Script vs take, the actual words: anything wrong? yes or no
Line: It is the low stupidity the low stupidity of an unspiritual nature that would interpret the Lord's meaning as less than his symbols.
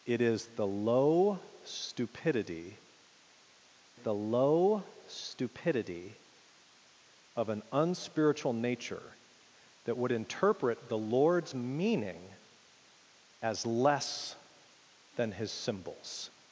no